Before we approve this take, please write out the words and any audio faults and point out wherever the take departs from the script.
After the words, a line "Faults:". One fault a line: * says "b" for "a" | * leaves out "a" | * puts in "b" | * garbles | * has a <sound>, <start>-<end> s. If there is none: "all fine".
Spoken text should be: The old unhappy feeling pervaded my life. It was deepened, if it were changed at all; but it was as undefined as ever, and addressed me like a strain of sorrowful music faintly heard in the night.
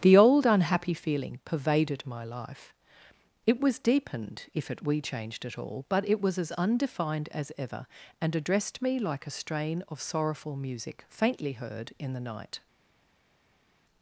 The old unhappy feeling pervaded my life. It was deepened, if it we changed at all; but it was as undefined as ever, and addressed me like a strain of sorrowful music faintly heard in the night.
Faults:
* says "we" for "were"